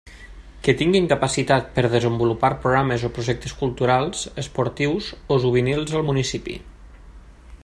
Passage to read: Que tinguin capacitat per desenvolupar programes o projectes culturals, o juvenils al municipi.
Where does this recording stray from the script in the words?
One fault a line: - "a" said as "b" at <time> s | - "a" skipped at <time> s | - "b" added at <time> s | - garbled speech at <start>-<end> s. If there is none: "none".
- "esportius" added at 4.5 s